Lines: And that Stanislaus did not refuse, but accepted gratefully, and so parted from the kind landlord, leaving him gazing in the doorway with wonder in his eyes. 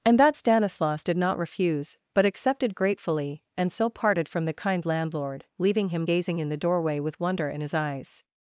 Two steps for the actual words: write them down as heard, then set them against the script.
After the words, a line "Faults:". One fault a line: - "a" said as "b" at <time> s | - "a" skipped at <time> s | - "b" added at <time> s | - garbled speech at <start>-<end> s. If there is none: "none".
And that Stanislaus did not refuse, but accepted gratefully, and so parted from the kind landlord, leaving him gazing in the doorway with wonder in his eyes.
Faults:
none